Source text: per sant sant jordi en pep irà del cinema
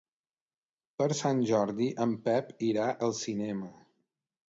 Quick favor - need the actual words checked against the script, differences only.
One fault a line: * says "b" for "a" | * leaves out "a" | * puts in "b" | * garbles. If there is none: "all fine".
* leaves out "sant"
* says "al" for "del"